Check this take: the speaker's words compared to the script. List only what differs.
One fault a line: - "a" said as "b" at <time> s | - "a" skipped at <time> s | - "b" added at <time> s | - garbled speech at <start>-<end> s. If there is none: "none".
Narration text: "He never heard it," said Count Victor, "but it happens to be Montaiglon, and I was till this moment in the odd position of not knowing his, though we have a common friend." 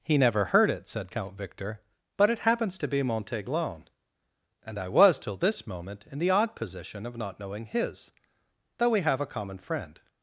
none